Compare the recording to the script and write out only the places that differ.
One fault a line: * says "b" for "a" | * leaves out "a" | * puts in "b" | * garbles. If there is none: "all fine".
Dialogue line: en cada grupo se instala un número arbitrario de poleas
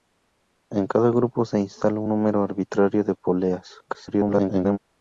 * garbles